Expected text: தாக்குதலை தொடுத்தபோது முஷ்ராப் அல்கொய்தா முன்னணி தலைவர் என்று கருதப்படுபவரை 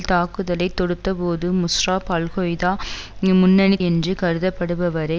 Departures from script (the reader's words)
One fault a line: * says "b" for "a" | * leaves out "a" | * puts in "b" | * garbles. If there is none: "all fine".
* leaves out "தலைவர்"